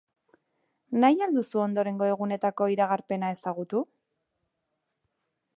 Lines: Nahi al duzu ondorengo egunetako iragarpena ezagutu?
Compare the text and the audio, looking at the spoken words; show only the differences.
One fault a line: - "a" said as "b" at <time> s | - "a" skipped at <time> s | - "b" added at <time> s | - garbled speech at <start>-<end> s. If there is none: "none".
none